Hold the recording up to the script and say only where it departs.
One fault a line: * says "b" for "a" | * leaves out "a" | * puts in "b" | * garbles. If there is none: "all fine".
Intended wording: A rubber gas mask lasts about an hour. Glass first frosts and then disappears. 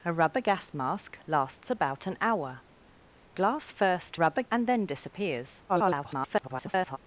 * says "rubber" for "frosts"
* garbles